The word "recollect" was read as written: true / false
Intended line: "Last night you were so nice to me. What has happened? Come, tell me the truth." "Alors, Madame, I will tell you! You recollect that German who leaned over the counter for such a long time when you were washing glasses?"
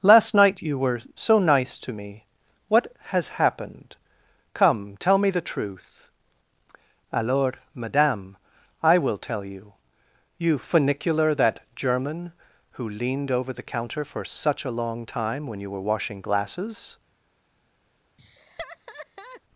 false